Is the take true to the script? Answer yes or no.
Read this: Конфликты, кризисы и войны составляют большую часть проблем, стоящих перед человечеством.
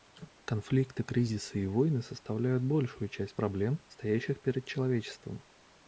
yes